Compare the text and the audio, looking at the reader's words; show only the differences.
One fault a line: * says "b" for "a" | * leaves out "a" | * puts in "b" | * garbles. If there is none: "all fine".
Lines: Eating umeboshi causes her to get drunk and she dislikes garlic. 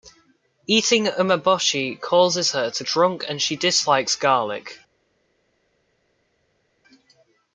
* leaves out "get"